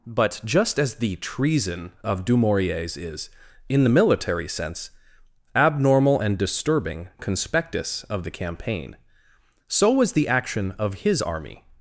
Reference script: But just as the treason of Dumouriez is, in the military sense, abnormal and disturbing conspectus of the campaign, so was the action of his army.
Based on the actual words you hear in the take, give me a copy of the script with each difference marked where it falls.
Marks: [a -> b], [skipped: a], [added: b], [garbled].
But just as the treason of Dumouriez is, in the military sense, abnormal and disturbing conspectus of the campaign, so was the action of his army.